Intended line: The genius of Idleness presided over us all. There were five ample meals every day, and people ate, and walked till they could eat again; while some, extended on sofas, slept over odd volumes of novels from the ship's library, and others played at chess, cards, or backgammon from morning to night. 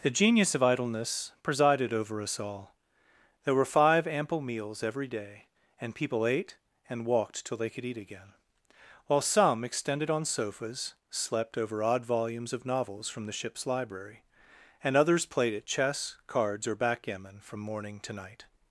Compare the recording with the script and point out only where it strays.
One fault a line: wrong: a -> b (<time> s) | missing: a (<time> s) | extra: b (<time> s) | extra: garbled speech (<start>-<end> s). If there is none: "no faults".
no faults